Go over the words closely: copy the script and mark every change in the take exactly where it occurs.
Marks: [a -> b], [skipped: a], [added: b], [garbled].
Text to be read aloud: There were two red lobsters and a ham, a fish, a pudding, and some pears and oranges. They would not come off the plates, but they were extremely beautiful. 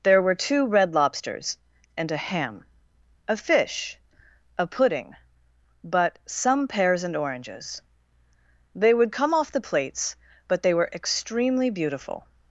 There were two red lobsters and a ham, a fish, a pudding, [and -> but] some pears and oranges. They would [skipped: not] come off the plates, but they were extremely beautiful.